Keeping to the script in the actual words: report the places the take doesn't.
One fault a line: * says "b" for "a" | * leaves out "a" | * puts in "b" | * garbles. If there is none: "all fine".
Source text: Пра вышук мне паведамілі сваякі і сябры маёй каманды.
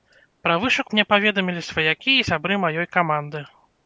all fine